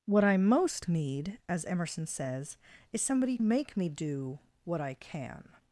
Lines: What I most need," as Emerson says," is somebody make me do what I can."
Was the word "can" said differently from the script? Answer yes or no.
no